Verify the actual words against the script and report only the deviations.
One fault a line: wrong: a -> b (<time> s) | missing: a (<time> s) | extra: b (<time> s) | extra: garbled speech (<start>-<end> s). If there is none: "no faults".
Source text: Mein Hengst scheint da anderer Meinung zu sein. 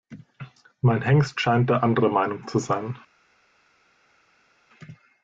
no faults